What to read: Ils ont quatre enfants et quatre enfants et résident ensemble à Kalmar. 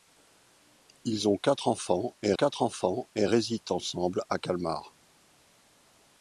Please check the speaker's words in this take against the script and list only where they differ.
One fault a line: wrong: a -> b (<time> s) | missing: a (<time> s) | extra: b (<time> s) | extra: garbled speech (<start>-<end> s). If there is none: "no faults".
no faults